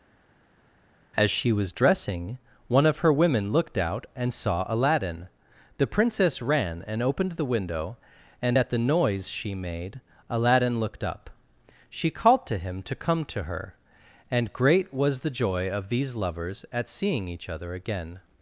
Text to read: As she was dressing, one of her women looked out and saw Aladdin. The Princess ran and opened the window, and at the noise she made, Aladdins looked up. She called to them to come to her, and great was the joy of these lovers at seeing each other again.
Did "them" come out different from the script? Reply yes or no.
yes